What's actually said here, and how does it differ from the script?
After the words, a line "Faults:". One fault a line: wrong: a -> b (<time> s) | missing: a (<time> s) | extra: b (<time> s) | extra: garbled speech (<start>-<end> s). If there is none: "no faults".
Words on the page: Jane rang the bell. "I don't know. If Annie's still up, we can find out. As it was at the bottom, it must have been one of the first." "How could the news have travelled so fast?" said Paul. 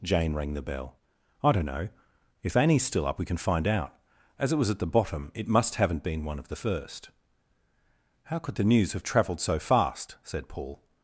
Jane rang the bell. "I don't know. If Annie's still up, we can find out. As it was at the bottom, it must haven't been one of the first." "How could the news have travelled so fast?" said Paul.
Faults:
wrong: have -> haven't (5.8 s)